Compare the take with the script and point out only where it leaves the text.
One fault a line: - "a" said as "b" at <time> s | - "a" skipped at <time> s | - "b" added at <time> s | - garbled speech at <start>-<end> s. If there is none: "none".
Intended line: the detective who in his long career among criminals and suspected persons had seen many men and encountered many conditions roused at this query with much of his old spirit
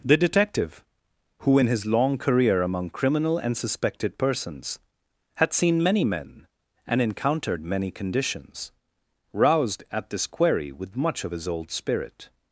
- "criminals" said as "criminal" at 2.9 s